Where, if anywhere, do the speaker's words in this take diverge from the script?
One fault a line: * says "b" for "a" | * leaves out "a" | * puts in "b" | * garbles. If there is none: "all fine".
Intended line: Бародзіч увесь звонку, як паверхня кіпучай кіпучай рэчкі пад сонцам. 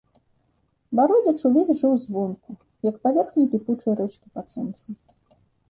* puts in "жыў"
* leaves out "кіпучай"